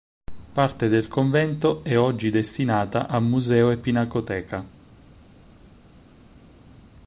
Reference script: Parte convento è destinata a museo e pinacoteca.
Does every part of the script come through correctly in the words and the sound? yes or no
no